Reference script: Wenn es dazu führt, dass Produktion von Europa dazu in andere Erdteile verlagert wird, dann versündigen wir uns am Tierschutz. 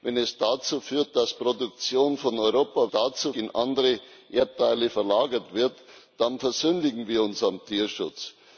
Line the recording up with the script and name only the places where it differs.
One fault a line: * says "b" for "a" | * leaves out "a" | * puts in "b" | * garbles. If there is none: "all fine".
all fine